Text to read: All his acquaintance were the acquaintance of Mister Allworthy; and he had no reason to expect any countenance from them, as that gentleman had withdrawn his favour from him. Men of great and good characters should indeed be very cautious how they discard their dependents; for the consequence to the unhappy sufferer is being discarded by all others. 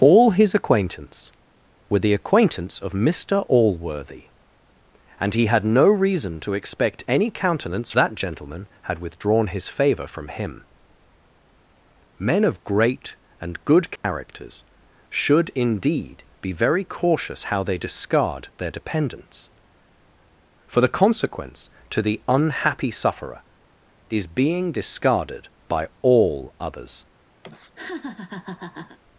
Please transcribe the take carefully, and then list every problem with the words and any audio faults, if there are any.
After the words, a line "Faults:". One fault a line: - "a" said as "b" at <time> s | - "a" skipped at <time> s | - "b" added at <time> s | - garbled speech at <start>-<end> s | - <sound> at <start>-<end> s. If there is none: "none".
All his acquaintance were the acquaintance of Mister Allworthy; and he had no reason to expect any countenance that gentleman had withdrawn his favour from him. Men of great and good characters should indeed be very cautious how they discard their dependents; for the consequence to the unhappy sufferer is being discarded by all others.
Faults:
- "from them as" skipped at 7.9 s
- dropout at 14.0-14.0 s
- laugh at 27.4-29.0 s